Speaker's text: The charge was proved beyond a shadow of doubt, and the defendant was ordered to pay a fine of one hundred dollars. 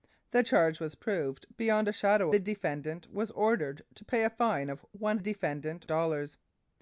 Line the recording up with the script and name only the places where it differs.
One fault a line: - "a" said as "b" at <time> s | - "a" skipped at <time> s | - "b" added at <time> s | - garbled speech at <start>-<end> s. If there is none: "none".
- "of doubt and" skipped at 2.3 s
- "hundred" said as "defendant" at 5.2 s